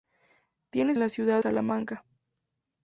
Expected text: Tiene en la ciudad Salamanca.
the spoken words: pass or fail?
pass